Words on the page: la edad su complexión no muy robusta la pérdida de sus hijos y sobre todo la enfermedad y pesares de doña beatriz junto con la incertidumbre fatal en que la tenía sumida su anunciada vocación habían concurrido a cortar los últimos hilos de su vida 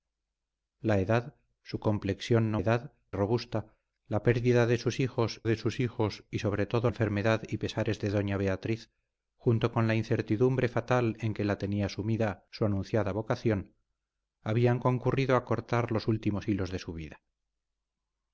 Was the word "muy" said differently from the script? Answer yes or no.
yes